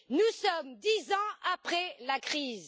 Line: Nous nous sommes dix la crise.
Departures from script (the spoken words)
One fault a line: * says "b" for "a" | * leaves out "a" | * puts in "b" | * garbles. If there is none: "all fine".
* leaves out "nous"
* puts in "ans après"